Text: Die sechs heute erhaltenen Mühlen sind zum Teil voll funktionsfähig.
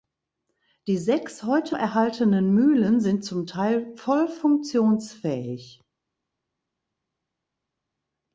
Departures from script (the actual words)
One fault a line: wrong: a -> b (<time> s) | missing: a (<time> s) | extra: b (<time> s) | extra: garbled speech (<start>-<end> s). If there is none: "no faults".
no faults